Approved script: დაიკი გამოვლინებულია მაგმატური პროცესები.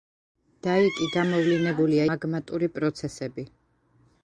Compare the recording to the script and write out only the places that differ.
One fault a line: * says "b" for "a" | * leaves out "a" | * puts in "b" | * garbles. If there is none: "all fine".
all fine